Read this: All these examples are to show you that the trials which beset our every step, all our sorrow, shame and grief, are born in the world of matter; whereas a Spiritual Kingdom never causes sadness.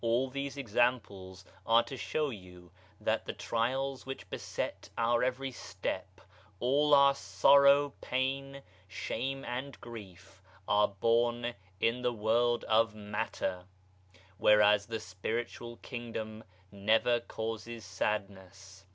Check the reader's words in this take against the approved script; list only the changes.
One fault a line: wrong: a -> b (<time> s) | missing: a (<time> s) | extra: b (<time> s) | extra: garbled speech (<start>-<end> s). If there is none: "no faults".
extra: pain (8.0 s)
wrong: a -> the (14.9 s)